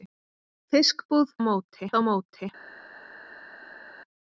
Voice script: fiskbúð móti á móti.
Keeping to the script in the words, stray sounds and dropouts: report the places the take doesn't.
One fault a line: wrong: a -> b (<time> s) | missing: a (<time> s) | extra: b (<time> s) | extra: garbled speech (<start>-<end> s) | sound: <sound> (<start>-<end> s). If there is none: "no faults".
no faults